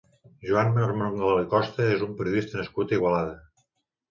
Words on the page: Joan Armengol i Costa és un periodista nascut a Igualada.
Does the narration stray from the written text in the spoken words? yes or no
no